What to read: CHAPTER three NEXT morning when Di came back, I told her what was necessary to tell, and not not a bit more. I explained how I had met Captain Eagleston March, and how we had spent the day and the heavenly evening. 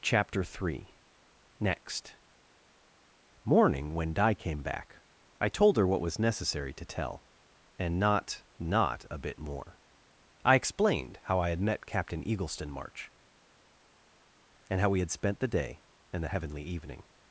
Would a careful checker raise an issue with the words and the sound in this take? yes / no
no